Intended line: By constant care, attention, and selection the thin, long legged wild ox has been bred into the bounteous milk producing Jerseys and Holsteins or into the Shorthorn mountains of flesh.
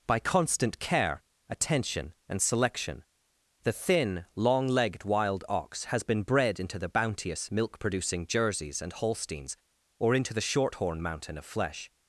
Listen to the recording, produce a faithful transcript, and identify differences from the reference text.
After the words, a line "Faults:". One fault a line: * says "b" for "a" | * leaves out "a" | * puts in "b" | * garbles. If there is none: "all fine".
By constant care, attention, and selection the thin, long legged wild ox has been bred into the bounteous milk producing Jerseys and Holsteins or into the Shorthorn mountain of flesh.
Faults:
* says "mountain" for "mountains"